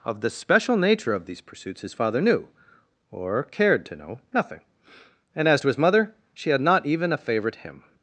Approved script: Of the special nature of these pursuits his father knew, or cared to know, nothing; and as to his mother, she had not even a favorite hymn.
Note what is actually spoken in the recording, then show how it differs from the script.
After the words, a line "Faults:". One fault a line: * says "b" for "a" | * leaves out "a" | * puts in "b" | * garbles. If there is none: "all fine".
Of the special nature of these pursuits his father knew, or cared to know, nothing; and as to his mother, she had not even a favorite hymn.
Faults:
all fine